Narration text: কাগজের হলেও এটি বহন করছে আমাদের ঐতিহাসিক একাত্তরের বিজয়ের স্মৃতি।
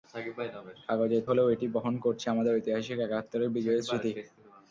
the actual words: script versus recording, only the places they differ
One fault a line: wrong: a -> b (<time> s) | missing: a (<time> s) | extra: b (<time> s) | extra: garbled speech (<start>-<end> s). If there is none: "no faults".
no faults